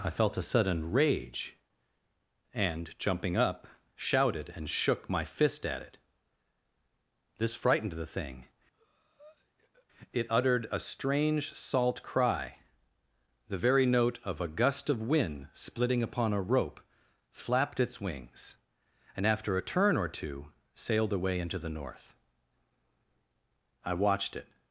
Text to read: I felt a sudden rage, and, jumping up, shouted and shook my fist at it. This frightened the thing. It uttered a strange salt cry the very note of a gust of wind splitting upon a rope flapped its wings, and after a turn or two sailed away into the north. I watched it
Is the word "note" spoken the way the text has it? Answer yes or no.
yes